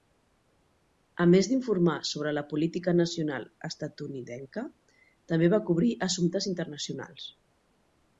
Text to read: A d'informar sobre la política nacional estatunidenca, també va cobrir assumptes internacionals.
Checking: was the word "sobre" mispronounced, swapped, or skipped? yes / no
no